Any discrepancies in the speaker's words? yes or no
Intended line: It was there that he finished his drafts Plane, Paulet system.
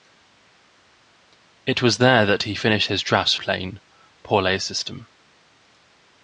no